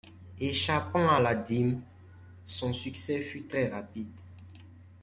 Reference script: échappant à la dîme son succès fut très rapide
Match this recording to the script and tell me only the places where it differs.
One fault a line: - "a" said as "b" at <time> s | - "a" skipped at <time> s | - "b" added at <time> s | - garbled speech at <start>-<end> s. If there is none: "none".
none